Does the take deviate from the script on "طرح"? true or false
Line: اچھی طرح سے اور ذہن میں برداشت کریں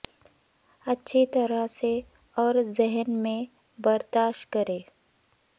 false